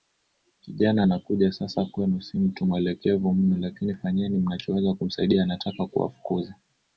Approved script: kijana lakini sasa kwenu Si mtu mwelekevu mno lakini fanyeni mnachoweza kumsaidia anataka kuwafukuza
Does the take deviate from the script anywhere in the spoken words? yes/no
yes